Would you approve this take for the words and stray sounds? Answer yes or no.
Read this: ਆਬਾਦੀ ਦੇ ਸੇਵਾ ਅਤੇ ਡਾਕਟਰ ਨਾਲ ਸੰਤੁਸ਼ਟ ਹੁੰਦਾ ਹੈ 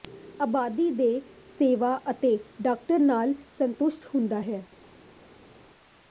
yes